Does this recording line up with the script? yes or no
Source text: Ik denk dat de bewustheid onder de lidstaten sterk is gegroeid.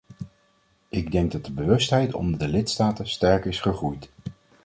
yes